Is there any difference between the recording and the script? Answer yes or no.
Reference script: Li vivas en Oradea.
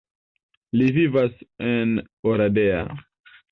no